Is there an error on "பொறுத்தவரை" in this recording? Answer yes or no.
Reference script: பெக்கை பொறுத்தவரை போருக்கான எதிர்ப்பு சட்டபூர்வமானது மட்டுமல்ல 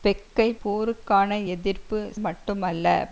yes